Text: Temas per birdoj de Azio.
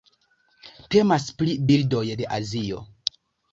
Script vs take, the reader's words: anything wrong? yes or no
yes